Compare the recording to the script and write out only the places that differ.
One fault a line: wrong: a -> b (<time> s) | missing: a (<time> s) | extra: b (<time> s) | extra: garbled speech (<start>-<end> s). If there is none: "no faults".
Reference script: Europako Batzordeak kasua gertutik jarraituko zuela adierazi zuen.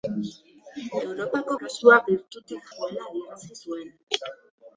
missing: Batzordeak (1.6 s)
missing: jarraituko (2.7 s)